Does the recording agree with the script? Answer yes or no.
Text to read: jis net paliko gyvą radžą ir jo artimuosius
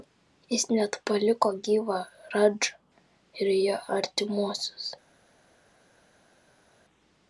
yes